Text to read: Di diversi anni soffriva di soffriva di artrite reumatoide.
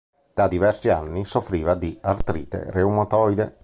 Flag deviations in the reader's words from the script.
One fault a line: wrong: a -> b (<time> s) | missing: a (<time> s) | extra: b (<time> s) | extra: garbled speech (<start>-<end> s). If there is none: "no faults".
wrong: Di -> Da (0.3 s)
missing: soffriva di (2.0 s)